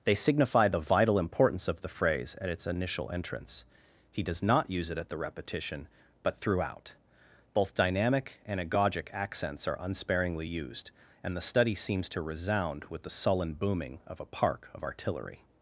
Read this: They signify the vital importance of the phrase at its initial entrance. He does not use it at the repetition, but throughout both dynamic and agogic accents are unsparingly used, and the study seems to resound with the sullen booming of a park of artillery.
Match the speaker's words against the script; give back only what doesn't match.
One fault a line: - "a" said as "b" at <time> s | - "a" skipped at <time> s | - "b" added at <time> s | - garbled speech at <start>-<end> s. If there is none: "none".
none